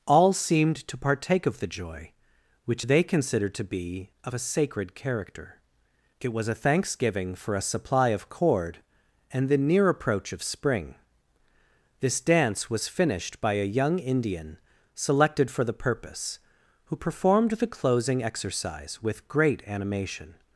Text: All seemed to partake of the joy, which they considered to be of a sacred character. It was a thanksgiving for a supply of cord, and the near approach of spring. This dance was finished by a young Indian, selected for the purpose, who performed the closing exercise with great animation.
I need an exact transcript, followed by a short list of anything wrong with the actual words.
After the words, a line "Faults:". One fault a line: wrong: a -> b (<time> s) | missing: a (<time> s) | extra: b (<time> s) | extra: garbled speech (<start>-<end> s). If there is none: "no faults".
All seemed to partake of the joy, which they considered to be of a sacred character. It was a thanksgiving for a supply of cord, and the near approach of spring. This dance was finished by a young Indian, selected for the purpose, who performed the closing exercise with great animation.
Faults:
no faults